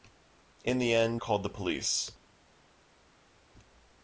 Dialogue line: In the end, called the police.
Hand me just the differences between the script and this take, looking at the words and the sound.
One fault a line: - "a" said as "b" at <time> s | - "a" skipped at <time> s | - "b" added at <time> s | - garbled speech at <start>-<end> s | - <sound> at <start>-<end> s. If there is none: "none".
none